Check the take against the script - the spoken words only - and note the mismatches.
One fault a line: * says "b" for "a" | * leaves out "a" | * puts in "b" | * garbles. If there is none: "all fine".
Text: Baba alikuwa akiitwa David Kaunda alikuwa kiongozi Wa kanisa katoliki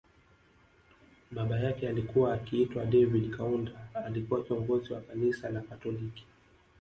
* puts in "yake"
* puts in "la"